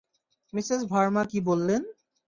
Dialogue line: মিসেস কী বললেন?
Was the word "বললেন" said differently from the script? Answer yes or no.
no